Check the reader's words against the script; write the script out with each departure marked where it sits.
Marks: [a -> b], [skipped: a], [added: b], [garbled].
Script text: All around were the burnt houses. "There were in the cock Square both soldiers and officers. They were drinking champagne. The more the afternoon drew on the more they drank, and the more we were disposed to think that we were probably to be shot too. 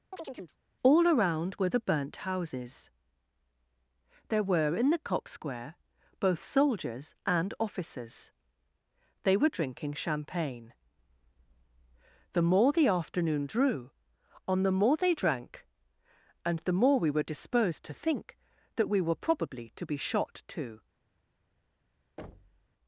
All around were the burnt houses. "There were in the cock Square both soldiers and officers. They were drinking champagne. The more the afternoon drew on the more they drank, and the more we were disposed to think that we were probably to be shot too.